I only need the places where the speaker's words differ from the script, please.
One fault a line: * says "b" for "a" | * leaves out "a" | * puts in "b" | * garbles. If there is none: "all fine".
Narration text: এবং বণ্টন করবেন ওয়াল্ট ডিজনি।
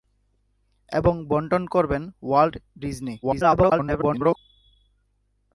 * garbles